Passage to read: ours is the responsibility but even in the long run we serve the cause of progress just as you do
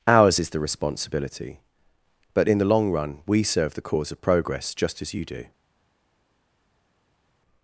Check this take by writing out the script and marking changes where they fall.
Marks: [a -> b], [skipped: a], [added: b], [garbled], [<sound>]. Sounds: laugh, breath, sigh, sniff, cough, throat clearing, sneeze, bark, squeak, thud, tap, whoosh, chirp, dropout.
ours is the responsibility but [skipped: even] in the long run we serve the cause of progress just as you do